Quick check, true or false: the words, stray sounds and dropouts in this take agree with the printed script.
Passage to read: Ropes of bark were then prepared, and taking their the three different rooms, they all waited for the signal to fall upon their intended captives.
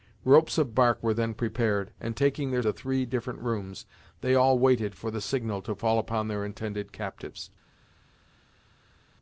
true